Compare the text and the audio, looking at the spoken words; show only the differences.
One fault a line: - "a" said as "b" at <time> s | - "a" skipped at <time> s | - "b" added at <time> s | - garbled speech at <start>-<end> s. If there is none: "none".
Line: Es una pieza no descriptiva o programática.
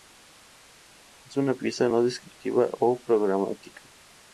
none